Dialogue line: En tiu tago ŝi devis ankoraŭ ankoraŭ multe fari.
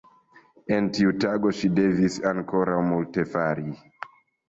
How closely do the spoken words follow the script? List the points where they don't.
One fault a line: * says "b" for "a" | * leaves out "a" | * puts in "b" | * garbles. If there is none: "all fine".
* leaves out "ankoraŭ"